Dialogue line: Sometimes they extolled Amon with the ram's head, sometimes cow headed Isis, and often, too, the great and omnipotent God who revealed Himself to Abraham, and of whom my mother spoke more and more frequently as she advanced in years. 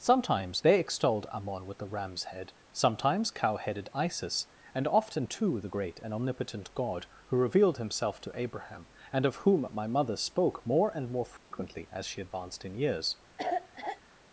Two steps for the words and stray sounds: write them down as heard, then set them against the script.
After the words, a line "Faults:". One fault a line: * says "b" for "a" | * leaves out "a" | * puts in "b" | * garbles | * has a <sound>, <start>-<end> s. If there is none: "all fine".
Sometimes they extolled Amon with the ram's head, sometimes cow headed Isis, and often, too, the great and omnipotent God who revealed Himself to Abraham, and of whom my mother spoke more and more frequently as she advanced in years.
Faults:
* has a dropout, 11.4-11.5 s
* has a cough, 13.4-14.0 s